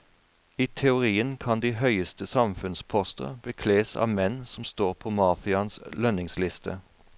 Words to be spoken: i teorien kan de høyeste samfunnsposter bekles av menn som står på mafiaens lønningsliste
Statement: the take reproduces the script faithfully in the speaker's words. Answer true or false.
true